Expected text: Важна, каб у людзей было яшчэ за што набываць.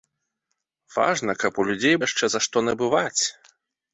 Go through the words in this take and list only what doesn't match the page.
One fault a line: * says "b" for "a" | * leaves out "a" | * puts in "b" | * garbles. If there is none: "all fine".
* leaves out "было"